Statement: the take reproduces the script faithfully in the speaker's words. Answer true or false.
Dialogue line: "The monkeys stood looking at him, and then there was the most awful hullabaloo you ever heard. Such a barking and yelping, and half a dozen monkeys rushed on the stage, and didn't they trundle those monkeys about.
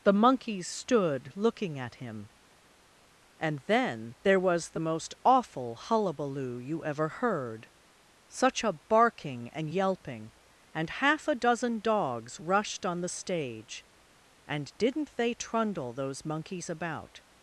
false